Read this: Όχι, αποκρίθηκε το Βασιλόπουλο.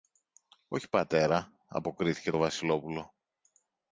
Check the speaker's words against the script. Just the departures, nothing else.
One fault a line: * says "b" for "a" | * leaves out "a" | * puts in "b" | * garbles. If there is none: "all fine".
* puts in "πατέρα"